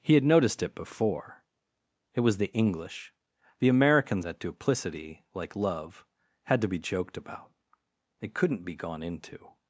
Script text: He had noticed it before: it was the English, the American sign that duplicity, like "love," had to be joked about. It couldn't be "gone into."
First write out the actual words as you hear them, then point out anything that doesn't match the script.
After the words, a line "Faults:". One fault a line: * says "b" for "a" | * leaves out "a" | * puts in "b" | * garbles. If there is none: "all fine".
He had noticed it before: it was the English, the American that duplicity, like "love," had to be joked about. It couldn't be "gone into."
Faults:
* leaves out "sign"